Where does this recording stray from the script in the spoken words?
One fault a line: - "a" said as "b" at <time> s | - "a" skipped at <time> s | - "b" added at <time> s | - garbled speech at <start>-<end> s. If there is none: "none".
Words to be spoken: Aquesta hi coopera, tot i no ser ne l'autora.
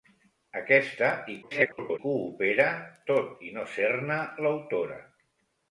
- garbled speech at 1.4-2.0 s